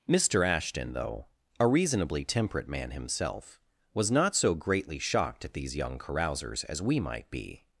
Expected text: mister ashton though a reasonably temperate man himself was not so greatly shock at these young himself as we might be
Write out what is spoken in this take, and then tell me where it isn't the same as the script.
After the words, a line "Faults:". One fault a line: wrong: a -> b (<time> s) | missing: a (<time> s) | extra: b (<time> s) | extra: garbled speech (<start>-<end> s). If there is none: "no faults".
mister ashton though a reasonably temperate man himself was not so greatly shocked at these young carousers as we might be
Faults:
wrong: shock -> shocked (5.0 s)
wrong: himself -> carousers (6.0 s)